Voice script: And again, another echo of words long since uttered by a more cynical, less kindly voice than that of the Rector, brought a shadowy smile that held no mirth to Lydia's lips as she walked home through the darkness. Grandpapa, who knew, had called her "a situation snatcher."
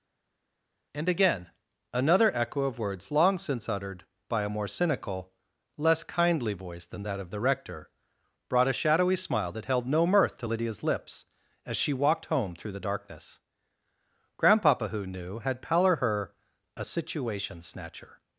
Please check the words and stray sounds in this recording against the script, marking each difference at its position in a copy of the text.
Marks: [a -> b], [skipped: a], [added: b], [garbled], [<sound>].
And again, another echo of words long since uttered by a more cynical, less kindly voice than that of the Rector, brought a shadowy smile that held no mirth to Lydia's lips as she walked home through the darkness. Grandpapa, who knew, had [called -> pallor] her "a situation snatcher."